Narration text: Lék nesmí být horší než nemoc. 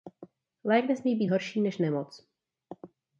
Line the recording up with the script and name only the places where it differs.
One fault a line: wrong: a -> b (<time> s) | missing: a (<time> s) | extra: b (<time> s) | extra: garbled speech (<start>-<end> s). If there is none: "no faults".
no faults